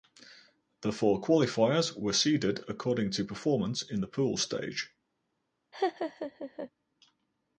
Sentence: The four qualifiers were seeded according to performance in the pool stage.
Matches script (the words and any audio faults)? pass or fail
fail